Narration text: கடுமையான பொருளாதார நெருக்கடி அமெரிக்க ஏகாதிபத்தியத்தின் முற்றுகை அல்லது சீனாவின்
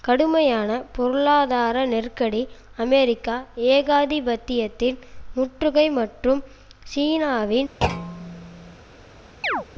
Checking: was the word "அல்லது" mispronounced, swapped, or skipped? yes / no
yes